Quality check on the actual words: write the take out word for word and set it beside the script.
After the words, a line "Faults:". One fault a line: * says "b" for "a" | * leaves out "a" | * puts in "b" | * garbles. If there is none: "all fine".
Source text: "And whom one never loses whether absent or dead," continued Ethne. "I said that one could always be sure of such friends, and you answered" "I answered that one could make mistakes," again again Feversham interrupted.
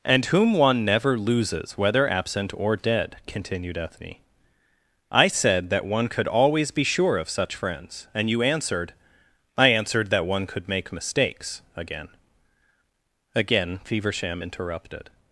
"And whom one never loses whether absent or dead," continued Ethne. "I said that one could always be sure of such friends, and you answered" "I answered that one could make mistakes," again again Feversham interrupted.
Faults:
all fine